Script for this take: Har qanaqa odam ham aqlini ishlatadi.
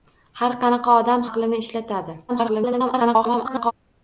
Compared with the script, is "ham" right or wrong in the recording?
wrong